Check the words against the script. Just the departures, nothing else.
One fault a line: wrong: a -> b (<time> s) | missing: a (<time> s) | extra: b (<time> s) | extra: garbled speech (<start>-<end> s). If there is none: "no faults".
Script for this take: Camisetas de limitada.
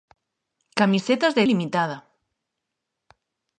no faults